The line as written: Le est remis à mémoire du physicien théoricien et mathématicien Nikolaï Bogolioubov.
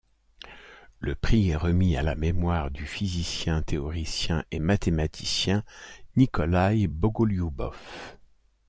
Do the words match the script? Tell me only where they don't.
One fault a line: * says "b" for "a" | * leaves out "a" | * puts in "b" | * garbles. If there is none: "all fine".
* puts in "prix"
* puts in "la"